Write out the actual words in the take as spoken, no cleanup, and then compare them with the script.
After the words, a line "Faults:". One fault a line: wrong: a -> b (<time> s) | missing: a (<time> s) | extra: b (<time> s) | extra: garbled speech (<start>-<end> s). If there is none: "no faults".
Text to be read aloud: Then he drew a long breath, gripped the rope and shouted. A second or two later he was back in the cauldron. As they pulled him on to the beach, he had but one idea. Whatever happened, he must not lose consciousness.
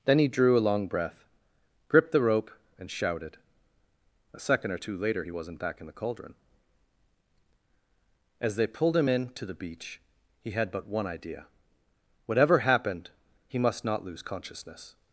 Then he drew a long breath, gripped the rope and shouted. A second or two later he wasn't back in the cauldron. As they pulled him in to the beach, he had but one idea. Whatever happened, he must not lose consciousness.
Faults:
wrong: was -> wasn't (5.3 s)
wrong: on -> in (9.1 s)